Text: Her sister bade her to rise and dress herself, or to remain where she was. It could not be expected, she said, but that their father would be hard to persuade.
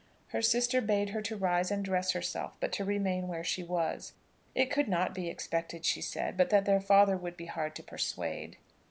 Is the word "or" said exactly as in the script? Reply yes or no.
no